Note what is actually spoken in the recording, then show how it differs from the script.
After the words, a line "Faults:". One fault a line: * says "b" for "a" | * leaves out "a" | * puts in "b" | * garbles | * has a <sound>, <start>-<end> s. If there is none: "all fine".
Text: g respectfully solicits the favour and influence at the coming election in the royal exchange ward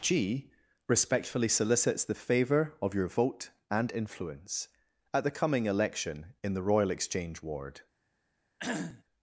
g respectfully solicits the favour of your vote and influence at the coming election in the royal exchange ward
Faults:
* puts in "of your vote"
* has a cough, 8.6-9.0 s